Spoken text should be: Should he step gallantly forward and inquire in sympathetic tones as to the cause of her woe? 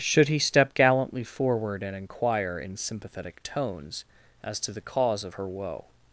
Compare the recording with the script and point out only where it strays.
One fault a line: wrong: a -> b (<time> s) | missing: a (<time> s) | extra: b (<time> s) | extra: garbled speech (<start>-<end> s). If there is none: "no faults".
no faults